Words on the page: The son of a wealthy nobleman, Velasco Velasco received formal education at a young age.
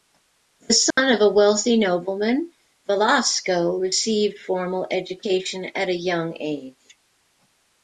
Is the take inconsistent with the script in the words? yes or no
yes